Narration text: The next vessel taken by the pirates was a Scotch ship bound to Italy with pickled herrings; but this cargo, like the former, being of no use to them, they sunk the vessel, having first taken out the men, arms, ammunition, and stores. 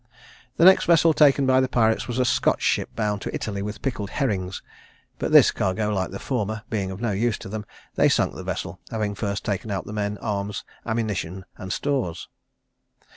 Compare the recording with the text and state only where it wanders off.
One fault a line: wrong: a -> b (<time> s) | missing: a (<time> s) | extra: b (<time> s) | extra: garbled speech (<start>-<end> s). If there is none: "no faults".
no faults